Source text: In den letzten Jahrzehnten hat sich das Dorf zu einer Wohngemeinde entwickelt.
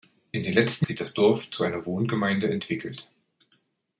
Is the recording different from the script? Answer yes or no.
yes